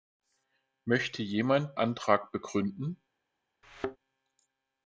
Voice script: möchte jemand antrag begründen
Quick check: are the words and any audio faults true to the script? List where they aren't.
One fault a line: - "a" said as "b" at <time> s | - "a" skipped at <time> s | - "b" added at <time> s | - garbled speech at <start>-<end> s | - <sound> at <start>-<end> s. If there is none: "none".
- thud at 3.6-4.0 s